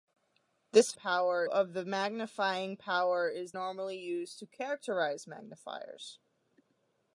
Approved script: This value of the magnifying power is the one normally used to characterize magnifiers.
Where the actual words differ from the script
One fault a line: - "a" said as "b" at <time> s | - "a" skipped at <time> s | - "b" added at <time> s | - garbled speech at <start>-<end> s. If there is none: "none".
- "value" said as "power" at 1.0 s
- "the one" skipped at 3.5 s